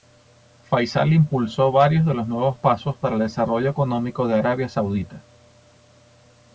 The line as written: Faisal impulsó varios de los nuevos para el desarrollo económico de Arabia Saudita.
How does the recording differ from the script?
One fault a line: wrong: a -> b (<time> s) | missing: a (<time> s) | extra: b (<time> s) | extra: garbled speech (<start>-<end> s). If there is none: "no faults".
extra: pasos (2.6 s)